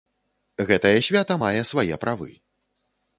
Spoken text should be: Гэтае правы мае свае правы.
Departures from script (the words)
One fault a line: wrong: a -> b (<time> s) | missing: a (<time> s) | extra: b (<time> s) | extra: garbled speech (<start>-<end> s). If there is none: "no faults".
wrong: правы -> свята (1.1 s)